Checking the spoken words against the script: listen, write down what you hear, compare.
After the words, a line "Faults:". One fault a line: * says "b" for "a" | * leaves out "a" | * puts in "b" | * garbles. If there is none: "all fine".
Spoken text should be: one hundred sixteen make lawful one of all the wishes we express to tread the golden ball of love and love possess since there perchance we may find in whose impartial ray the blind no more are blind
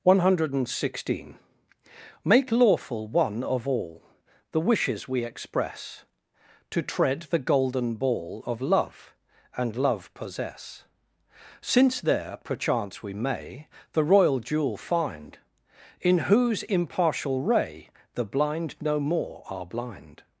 one hundred sixteen make lawful one of all the wishes we express to tread the golden ball of love and love possess since there perchance we may the royal jewel find in whose impartial ray the blind no more are blind
Faults:
* puts in "the royal jewel"